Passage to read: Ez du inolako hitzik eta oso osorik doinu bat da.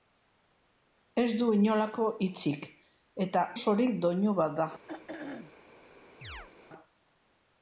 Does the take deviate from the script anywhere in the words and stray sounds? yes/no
yes